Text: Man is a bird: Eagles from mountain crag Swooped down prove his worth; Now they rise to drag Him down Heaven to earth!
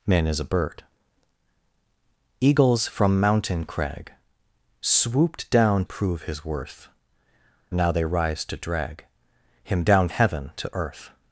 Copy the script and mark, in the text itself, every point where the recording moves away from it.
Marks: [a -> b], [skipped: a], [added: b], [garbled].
Man is a bird: Eagles from mountain crag Swooped down prove his worth; Now they rise to drag Him down Heaven to earth!